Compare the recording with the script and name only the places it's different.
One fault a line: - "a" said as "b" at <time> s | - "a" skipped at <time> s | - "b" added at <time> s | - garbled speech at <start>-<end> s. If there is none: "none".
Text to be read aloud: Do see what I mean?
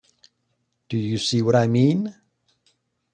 - "you" added at 1.0 s